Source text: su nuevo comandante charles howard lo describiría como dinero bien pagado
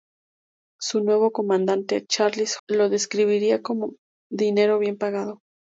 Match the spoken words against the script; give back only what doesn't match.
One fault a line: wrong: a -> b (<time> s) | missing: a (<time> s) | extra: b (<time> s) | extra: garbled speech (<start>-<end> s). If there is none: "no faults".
missing: howard (2.6 s)